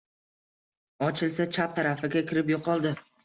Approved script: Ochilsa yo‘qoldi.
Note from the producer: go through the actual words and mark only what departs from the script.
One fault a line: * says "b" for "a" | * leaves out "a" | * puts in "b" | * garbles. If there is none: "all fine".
* puts in "chap tarafiga kirib"